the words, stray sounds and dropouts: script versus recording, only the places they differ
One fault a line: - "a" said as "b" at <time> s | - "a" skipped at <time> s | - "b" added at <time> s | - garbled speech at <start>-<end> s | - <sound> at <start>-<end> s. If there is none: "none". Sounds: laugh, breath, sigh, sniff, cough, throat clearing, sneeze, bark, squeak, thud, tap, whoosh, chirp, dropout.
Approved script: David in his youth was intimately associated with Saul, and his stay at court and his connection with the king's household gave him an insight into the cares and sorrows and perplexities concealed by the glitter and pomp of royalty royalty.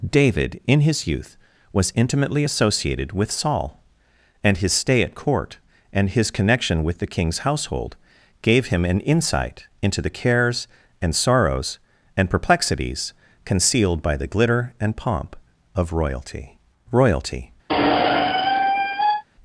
- squeak at 17.7-19.2 s